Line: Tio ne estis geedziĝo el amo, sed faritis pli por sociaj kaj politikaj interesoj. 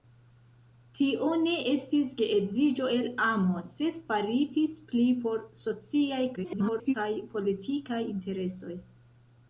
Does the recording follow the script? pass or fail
fail